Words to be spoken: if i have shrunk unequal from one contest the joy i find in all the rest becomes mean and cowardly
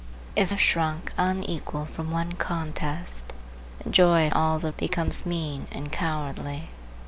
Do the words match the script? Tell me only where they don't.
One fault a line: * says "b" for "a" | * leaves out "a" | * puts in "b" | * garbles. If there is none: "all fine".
* leaves out "i"
* leaves out "find in"
* leaves out "rest"